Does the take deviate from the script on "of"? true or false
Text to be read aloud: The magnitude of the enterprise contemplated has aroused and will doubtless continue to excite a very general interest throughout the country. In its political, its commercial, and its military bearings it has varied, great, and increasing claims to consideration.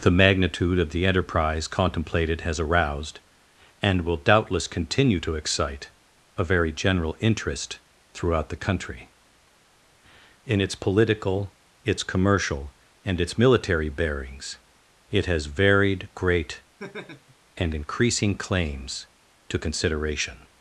false